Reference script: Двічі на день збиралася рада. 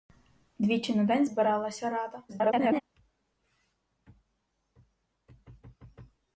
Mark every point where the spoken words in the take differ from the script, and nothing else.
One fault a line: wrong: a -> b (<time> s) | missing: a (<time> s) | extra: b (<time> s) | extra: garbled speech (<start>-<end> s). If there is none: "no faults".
extra: garbled speech (2.3-2.8 s)